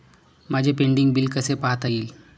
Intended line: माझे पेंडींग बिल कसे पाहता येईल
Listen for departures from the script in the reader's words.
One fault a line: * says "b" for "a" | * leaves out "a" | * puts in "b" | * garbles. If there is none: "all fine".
all fine